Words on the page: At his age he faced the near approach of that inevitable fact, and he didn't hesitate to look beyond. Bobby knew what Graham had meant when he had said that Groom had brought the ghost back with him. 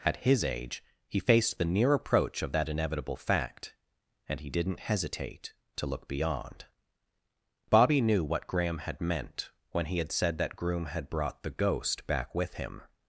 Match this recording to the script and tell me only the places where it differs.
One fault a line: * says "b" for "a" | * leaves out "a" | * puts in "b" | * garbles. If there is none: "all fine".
all fine